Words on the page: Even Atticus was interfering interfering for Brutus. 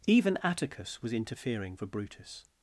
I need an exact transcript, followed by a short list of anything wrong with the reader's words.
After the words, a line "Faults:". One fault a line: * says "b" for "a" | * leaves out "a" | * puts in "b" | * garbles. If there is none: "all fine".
Even Atticus was interfering for Brutus.
Faults:
* leaves out "interfering"